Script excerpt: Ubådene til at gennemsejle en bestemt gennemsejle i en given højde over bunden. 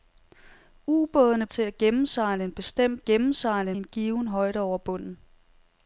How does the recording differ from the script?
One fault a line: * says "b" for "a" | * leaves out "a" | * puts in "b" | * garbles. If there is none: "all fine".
all fine